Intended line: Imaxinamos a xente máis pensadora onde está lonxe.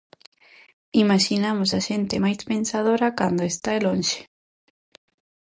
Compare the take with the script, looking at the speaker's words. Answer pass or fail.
fail